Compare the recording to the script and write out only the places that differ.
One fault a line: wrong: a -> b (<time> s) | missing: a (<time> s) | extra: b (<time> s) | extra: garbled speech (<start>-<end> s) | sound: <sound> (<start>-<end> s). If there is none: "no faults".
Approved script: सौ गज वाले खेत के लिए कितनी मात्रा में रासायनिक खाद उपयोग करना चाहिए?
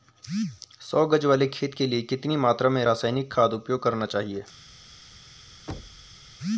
sound: thud (5.7-6.2 s)